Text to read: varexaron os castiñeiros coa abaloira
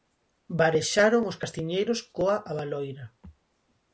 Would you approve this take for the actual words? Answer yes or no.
yes